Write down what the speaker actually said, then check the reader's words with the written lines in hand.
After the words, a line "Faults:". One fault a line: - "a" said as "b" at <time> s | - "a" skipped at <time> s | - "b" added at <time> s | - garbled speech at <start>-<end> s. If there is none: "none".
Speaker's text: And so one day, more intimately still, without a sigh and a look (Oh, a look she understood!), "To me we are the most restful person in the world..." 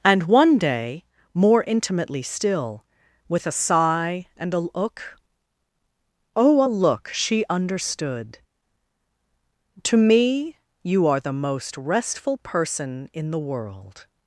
And one day, more intimately still, with a sigh and a look (Oh, a look she understood!), "To me you are the most restful person in the world..."
Faults:
- "so" skipped at 0.2 s
- "without" said as "with" at 3.3 s
- "we" said as "you" at 10.8 s